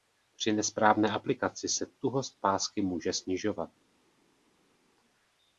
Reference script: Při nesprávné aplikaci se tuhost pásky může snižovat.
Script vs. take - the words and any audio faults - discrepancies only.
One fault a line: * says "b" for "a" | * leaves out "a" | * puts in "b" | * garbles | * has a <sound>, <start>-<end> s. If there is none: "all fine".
all fine